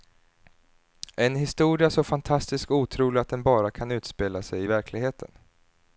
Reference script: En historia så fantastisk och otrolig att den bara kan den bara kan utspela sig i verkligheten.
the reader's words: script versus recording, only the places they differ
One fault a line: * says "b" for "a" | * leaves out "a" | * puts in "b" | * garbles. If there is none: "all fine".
* leaves out "den bara kan"